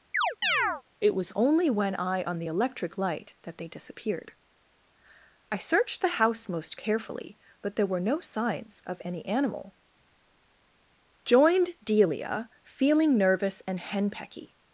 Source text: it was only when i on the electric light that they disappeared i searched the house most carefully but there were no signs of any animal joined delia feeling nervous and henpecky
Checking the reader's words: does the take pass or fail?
pass